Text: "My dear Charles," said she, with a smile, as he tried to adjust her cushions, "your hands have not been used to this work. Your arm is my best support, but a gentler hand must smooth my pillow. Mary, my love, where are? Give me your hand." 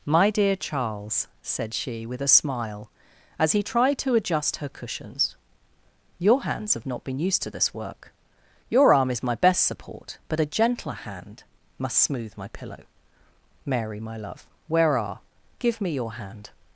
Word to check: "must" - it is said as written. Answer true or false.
true